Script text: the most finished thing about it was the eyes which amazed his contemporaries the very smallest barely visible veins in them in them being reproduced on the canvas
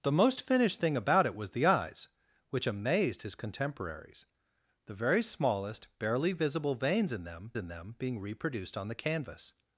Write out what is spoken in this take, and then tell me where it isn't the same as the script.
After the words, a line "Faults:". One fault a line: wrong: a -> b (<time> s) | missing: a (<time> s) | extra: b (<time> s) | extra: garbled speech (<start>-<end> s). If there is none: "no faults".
the most finished thing about it was the eyes which amazed his contemporaries the very smallest barely visible veins in them in them being reproduced on the canvas
Faults:
no faults